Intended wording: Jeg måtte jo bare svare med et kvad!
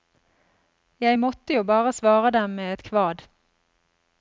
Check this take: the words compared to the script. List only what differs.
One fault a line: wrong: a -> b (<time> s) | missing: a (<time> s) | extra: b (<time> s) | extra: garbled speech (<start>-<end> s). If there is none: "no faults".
extra: dem (2.3 s)